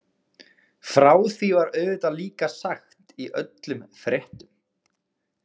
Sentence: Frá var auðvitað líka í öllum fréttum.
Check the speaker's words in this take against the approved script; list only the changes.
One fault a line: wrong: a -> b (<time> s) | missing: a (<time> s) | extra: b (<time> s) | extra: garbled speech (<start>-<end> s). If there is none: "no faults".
extra: því (1.3 s)
extra: sagt (2.5 s)